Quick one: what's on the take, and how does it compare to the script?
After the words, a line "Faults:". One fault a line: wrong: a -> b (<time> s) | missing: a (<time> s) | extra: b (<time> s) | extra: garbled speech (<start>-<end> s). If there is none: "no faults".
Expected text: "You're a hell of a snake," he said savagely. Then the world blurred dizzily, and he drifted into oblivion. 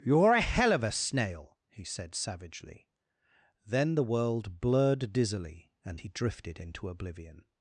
"You're a hell of a snail," he said savagely. Then the world blurred dizzily, and he drifted into oblivion.
Faults:
wrong: snake -> snail (0.9 s)